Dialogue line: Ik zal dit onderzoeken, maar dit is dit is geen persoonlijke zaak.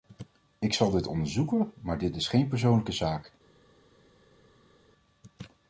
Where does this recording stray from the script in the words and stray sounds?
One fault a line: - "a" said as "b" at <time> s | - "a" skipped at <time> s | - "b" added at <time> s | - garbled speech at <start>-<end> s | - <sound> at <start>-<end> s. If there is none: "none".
- "dit is" skipped at 2.3 s